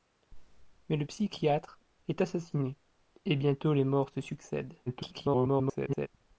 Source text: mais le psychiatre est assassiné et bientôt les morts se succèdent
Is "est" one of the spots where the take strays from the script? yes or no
no